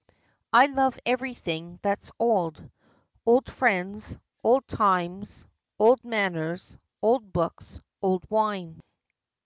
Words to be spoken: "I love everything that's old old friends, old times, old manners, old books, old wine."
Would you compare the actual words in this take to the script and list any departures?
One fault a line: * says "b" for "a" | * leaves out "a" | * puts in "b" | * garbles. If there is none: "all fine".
all fine